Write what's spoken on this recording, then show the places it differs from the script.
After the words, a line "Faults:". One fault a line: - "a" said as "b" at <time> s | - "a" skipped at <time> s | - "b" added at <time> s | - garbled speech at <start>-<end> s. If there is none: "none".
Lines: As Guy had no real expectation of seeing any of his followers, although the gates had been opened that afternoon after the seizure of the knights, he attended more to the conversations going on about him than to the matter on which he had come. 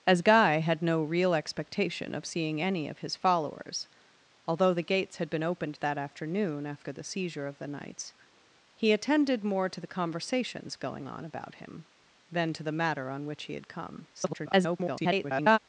As Guy had no real expectation of seeing any of his followers, although the gates had been opened that afternoon after the seizure of the knights, he attended more to the conversations going on about him than to the matter on which he had come. [garbled]
Faults:
- garbled speech at 14.1-15.6 s